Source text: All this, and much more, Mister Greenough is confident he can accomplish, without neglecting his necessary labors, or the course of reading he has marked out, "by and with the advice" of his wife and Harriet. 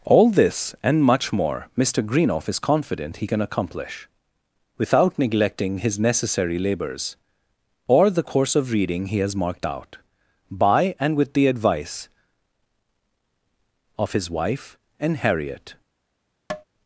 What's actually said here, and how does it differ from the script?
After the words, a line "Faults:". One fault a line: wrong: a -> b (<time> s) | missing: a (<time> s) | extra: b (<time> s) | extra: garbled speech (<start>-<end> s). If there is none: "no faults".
All this, and much more, Mister Greenough is confident he can accomplish, without neglecting his necessary labors, or the course of reading he has marked out, "by and with the advice" of his wife and Harriet.
Faults:
no faults